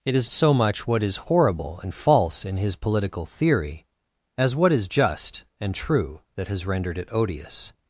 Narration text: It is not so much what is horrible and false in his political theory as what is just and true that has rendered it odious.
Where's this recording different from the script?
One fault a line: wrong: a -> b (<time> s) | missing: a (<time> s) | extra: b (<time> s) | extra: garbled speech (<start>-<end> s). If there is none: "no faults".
missing: not (0.3 s)